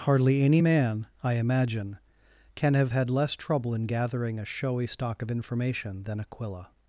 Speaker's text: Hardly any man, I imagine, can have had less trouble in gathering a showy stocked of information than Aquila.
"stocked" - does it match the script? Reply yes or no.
no